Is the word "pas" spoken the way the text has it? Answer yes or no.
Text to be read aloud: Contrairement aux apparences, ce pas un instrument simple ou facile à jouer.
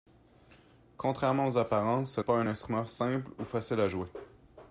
yes